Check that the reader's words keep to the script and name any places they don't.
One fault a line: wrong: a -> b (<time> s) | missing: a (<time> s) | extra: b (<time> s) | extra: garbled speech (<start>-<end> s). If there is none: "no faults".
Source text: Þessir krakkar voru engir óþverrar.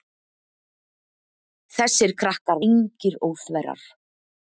missing: voru (2.6 s)